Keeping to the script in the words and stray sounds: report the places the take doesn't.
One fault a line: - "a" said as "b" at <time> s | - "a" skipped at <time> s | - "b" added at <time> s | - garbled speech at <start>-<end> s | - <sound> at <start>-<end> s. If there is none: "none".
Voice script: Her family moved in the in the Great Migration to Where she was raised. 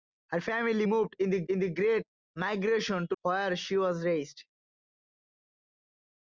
none